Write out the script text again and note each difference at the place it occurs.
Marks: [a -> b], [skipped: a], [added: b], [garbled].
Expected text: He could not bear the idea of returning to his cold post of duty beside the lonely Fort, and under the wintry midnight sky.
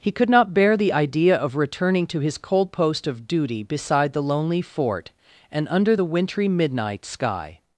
He could not bear the idea of returning to his cold post of duty beside the lonely Fort, and under the wintry midnight sky.